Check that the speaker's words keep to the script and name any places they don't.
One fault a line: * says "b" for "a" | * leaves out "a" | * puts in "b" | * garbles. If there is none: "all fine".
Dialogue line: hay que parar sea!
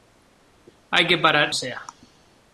all fine